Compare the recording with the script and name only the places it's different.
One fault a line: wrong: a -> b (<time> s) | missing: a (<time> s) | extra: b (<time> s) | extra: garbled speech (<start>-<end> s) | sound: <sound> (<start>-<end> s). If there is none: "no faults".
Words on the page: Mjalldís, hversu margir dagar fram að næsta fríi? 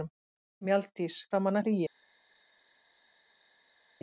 missing: hversu margir dagar (1.2 s)
missing: næsta (1.6 s)